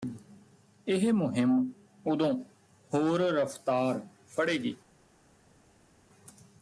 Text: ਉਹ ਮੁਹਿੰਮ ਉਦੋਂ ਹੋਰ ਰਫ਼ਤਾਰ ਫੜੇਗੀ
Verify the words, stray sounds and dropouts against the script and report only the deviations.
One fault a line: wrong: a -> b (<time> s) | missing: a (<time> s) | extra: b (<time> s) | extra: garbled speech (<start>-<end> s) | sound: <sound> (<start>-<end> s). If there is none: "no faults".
wrong: ਉਹ -> ਇਹ (0.9 s)